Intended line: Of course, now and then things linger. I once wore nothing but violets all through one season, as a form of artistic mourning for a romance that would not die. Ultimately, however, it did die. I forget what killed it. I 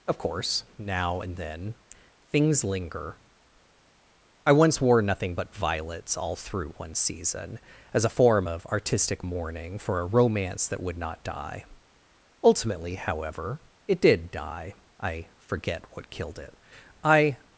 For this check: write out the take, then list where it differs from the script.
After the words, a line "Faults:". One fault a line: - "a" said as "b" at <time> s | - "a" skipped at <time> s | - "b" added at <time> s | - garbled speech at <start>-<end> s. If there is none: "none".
Of course, now and then things linger. I once wore nothing but violets all through one season, as a form of artistic mourning for a romance that would not die. Ultimately, however, it did die. I forget what killed it. I
Faults:
none